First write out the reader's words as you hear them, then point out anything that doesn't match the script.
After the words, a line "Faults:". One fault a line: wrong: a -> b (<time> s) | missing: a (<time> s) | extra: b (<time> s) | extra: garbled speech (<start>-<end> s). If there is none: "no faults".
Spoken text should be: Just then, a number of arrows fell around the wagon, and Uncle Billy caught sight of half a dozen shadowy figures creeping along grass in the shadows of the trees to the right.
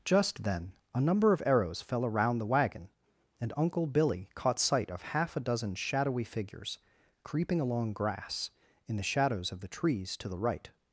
Just then, a number of arrows fell around the wagon, and Uncle Billy caught sight of half a dozen shadowy figures creeping along grass in the shadows of the trees to the right.
Faults:
no faults